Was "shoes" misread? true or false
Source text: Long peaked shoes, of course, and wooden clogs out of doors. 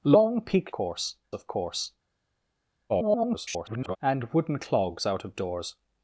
true